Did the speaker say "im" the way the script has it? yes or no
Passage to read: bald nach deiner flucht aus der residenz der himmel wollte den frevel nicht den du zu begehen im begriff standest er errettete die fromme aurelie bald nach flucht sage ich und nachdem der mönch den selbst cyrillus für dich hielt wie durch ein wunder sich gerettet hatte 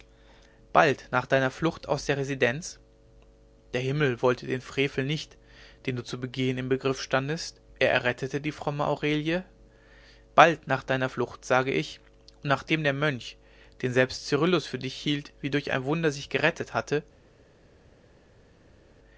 yes